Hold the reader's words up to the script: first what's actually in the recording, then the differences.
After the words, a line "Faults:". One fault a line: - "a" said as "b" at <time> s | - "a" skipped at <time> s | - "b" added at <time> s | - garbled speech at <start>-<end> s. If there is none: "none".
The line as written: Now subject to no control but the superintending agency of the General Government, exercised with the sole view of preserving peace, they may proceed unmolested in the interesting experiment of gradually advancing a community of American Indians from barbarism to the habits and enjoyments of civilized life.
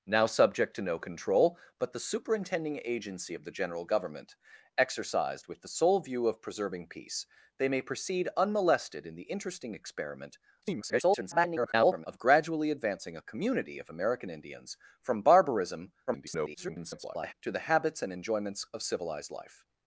Now subject to no control but the superintending agency of the General Government, exercised with the sole view of preserving peace, they may proceed unmolested in the interesting experiment [garbled] of gradually advancing a community of American Indians from barbarism [garbled] to the habits and enjoyments of civilized life.
Faults:
- garbled speech at 10.6-12.1 s
- garbled speech at 16.1-17.3 s